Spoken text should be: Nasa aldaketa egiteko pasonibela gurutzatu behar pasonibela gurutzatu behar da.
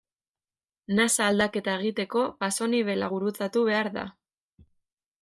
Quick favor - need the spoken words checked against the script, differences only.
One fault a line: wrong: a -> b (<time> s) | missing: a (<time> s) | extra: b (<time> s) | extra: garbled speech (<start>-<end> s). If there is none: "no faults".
missing: pasonibela gurutzatu behar (3.9 s)